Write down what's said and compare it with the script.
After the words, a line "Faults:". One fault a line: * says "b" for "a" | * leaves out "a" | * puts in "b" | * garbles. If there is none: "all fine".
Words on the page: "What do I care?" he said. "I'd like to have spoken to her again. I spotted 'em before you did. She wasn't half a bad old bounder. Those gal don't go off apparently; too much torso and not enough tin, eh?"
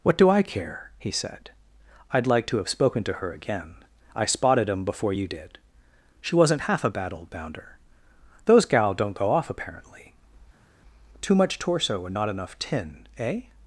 "What do I care?" he said. "I'd like to have spoken to her again. I spotted 'em before you did. She wasn't half a bad old bounder. Those gal don't go off apparently; too much torso and not enough tin, eh?"
Faults:
all fine